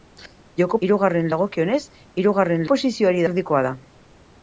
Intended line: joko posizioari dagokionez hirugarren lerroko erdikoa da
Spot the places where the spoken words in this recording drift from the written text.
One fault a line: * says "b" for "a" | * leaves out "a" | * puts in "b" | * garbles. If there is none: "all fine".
* says "hirugarren" for "posizioari"
* says "posizioari" for "lerroko"